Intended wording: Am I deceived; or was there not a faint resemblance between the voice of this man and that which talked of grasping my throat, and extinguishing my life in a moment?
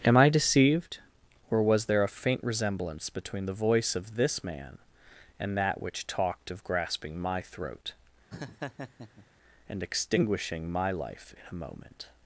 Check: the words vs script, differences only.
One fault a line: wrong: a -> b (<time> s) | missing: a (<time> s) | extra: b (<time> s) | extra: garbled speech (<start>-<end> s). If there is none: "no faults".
missing: not (2.0 s)